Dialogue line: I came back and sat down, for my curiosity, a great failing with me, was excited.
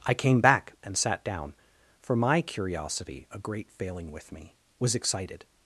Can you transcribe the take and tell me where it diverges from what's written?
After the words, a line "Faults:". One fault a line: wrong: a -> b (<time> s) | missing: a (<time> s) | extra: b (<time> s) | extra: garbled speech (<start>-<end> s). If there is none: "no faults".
I came back and sat down, for my curiosity, a great failing with me, was excited.
Faults:
no faults